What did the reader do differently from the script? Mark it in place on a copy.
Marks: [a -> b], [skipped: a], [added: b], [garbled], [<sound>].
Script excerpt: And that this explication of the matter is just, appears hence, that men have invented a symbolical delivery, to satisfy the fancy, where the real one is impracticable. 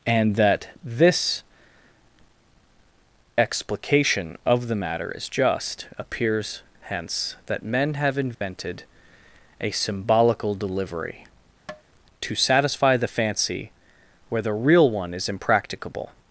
And that this explication of the matter is just, appears hence, that men have invented [dropout] a symbolical delivery, [tap] to satisfy the fancy, where the real one is impracticable.